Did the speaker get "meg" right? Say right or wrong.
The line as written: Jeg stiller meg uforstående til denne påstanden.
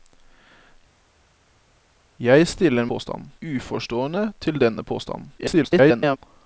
wrong